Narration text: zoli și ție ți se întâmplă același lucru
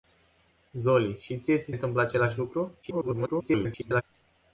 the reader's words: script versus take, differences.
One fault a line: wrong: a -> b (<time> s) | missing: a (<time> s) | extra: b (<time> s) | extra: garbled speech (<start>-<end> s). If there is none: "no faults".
missing: se (1.7 s)
extra: garbled speech (2.8-4.0 s)